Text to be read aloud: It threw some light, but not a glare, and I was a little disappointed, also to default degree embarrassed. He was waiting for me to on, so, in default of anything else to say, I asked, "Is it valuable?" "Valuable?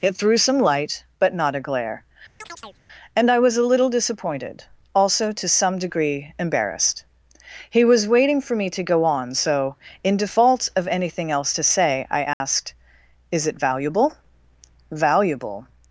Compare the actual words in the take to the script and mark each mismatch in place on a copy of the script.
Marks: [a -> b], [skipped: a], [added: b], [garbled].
It threw some light, but not a glare, and I was a little disappointed, also to [default -> some] degree embarrassed. He was waiting for me to [added: go] on, so, in default of anything else to say, I asked, "Is it valuable?" "Valuable?